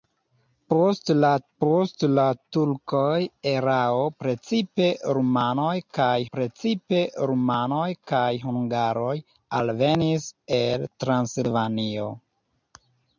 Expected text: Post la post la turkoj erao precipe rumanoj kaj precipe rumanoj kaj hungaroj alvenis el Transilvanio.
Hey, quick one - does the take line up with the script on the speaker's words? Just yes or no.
yes